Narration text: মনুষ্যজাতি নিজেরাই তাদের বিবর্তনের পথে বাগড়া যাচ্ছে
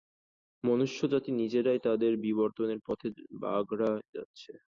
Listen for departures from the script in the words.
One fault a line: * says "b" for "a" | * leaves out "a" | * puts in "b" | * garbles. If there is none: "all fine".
all fine